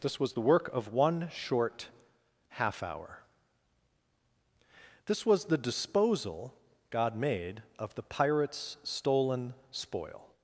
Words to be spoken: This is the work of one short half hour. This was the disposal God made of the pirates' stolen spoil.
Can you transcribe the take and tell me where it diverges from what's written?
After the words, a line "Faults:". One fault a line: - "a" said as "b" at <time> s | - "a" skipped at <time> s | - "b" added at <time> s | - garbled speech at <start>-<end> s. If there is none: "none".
This was the work of one short half hour. This was the disposal God made of the pirates' stolen spoil.
Faults:
- "is" said as "was" at 0.2 s